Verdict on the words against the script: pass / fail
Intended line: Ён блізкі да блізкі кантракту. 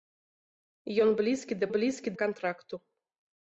pass